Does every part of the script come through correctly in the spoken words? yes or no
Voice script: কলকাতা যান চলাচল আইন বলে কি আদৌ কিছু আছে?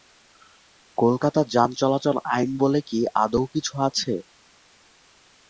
yes